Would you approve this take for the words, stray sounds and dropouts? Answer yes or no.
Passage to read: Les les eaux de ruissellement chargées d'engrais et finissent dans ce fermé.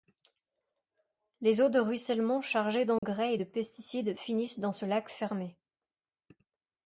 no